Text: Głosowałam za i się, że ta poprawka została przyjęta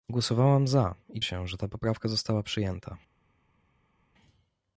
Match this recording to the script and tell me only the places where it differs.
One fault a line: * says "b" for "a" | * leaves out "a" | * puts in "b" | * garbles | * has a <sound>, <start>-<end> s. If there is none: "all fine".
all fine